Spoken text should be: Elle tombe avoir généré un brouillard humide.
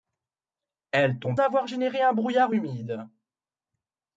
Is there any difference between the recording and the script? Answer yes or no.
no